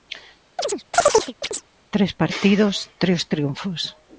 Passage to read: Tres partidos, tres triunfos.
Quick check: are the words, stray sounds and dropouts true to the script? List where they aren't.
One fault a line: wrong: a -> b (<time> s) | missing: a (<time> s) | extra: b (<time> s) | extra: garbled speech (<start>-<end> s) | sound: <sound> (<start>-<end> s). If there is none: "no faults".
sound: chirp (0.6-1.7 s)